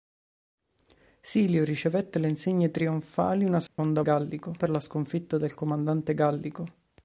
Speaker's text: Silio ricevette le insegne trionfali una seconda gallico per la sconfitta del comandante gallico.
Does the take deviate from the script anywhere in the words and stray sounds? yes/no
yes